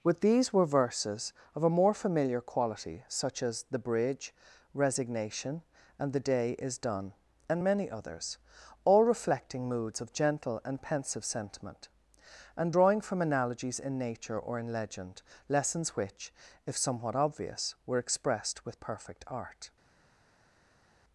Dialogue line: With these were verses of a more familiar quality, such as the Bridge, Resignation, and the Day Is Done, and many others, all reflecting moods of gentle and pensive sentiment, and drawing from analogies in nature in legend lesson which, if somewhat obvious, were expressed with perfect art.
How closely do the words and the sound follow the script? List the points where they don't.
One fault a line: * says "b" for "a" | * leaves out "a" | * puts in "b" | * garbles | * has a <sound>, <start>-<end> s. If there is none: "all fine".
* puts in "or"
* says "lessons" for "lesson"